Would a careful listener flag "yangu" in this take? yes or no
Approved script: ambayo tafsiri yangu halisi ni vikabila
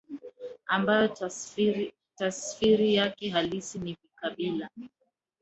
yes